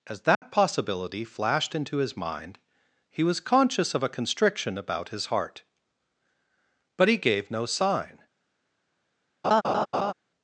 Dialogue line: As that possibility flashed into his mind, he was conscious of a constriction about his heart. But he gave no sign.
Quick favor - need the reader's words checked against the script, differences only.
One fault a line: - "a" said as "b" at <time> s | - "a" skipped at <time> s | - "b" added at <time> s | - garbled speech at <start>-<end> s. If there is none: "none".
none